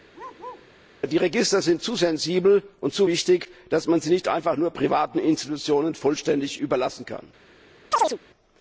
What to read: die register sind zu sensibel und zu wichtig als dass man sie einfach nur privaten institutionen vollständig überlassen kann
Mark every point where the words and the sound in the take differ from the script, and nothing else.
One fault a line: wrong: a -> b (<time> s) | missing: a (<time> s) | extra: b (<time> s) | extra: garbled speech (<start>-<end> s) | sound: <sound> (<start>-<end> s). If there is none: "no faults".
sound: bark (0.1-0.7 s)
sound: chirp (7.9-8.2 s)